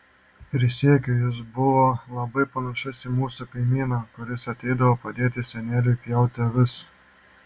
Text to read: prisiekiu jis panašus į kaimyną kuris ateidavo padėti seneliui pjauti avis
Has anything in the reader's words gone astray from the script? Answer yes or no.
yes